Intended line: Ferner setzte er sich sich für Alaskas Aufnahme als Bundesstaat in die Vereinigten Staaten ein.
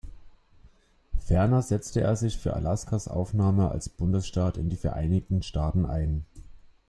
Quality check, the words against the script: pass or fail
fail